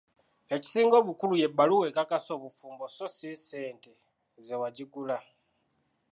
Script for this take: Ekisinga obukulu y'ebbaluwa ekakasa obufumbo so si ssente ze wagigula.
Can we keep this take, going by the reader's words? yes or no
yes